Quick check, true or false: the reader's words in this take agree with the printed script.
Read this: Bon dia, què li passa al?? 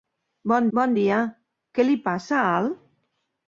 false